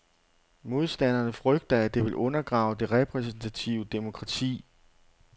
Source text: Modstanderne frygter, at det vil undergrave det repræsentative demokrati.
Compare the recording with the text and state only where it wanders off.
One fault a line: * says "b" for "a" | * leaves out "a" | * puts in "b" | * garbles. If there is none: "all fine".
all fine